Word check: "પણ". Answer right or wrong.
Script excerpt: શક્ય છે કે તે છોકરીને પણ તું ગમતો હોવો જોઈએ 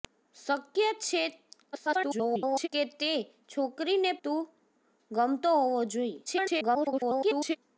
wrong